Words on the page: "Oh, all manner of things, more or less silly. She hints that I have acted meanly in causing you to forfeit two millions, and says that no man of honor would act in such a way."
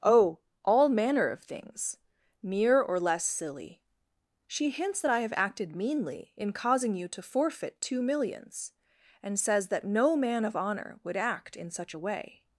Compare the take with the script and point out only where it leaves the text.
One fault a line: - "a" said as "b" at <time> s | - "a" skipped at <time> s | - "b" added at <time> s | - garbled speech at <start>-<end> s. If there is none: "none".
- "more" said as "mere" at 2.4 s